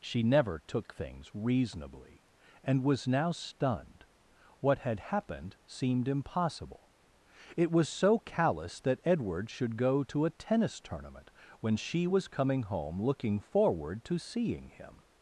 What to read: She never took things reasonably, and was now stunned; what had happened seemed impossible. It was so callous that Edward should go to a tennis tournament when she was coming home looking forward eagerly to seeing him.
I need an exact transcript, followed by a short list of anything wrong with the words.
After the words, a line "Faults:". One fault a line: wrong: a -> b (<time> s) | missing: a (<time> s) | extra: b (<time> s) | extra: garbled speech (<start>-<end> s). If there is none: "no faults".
She never took things reasonably, and was now stunned; what had happened seemed impossible. It was so callous that Edward should go to a tennis tournament when she was coming home looking forward to seeing him.
Faults:
missing: eagerly (14.0 s)